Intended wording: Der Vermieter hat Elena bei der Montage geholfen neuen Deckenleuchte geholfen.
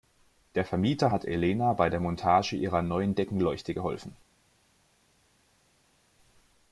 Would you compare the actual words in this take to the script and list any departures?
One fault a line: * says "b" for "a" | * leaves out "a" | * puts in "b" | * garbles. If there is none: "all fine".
* says "ihrer" for "geholfen"